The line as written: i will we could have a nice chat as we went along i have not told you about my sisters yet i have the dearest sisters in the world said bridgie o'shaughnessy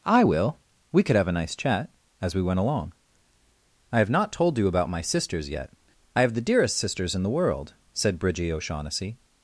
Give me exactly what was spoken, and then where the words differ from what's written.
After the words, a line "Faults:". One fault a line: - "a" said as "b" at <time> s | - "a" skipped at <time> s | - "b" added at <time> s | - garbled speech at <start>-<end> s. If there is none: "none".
i will we could have a nice chat as we went along i have not told you about my sisters yet i have the dearest sisters in the world said bridgie o'shaughnessy
Faults:
none